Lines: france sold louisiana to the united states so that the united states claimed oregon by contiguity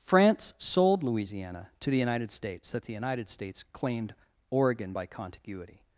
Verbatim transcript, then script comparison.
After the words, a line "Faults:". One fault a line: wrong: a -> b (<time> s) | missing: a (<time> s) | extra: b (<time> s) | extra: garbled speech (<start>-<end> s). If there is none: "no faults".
france sold louisiana to the united states that the united states claimed oregon by contiguity
Faults:
missing: so (2.7 s)